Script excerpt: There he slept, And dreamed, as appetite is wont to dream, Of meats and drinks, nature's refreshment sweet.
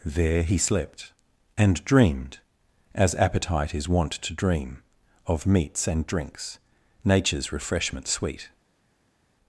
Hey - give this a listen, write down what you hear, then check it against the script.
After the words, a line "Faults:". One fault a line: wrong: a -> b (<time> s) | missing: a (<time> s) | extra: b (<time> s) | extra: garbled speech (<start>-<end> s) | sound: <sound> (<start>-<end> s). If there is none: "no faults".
There he slept, And dreamed, as appetite is wont to dream, Of meats and drinks, nature's refreshment sweet.
Faults:
no faults